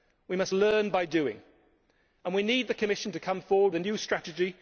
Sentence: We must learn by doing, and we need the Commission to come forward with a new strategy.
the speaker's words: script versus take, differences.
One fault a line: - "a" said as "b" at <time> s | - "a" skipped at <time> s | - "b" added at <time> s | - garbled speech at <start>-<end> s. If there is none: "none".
- "with" skipped at 3.7 s